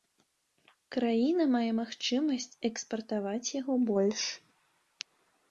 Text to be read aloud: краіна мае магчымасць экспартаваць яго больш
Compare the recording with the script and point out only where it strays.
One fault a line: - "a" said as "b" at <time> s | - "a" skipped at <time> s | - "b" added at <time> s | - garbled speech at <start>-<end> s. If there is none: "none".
none